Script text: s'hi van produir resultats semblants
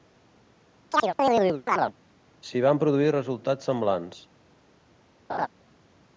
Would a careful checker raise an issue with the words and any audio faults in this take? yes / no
yes